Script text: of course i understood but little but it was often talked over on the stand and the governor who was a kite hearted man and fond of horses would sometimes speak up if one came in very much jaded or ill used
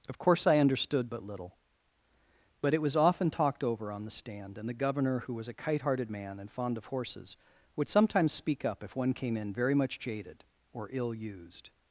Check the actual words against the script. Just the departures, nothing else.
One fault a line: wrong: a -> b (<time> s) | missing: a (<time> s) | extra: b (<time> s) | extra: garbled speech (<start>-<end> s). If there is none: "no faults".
no faults